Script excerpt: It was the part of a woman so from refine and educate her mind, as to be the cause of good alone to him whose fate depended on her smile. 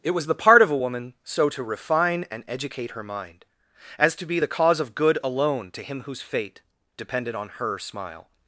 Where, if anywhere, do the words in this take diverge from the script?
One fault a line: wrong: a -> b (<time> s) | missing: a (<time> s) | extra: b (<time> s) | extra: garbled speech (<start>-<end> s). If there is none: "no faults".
wrong: from -> to (1.5 s)